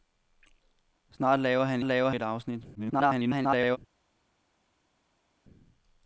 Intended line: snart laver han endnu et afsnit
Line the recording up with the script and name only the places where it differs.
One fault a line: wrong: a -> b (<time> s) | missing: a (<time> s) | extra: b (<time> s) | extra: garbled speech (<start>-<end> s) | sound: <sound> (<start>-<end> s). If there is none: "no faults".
wrong: endnu -> laver (1.8 s)
extra: garbled speech (2.7-3.8 s)